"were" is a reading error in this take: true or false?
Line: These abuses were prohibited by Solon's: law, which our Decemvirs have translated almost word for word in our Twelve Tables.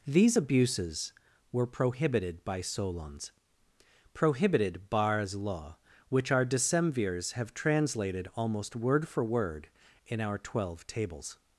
false